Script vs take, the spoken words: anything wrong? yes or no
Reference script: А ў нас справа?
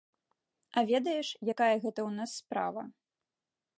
yes